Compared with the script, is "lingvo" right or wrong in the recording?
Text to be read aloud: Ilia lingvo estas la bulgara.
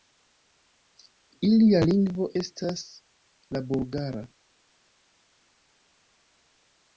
right